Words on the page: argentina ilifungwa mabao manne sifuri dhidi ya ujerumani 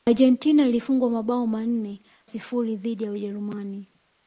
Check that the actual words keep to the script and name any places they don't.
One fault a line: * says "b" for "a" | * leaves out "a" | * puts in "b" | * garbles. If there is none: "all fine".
all fine